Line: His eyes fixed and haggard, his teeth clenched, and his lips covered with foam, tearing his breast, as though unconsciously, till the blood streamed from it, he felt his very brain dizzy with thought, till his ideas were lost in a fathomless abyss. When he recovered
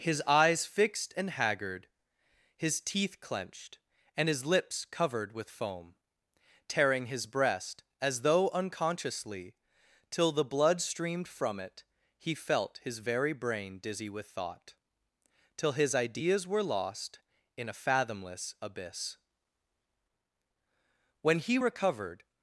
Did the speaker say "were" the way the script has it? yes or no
yes